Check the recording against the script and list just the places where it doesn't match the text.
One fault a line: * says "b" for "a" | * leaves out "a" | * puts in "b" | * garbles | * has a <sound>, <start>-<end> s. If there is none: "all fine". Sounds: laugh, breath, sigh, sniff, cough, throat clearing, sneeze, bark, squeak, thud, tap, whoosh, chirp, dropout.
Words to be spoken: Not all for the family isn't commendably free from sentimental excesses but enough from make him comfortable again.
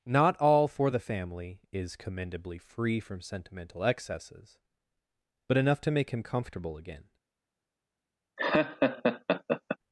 * says "is" for "isn't"
* says "to" for "from"
* has a laugh, 8.4-9.8 s